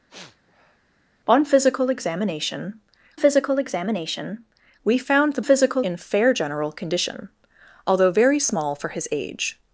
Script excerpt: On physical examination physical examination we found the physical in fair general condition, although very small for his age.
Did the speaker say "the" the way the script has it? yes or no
yes